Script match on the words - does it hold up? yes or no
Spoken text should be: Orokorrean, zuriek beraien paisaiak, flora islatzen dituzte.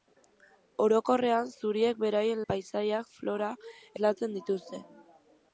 yes